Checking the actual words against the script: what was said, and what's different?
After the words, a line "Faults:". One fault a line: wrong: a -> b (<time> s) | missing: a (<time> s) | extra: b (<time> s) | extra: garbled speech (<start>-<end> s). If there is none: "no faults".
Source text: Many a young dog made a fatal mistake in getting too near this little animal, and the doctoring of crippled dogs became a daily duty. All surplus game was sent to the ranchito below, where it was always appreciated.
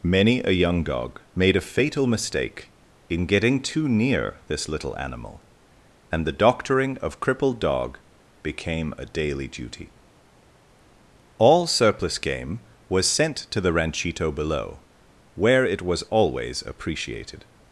Many a young dog made a fatal mistake in getting too near this little animal, and the doctoring of crippled dog became a daily duty. All surplus game was sent to the ranchito below, where it was always appreciated.
Faults:
wrong: dogs -> dog (7.6 s)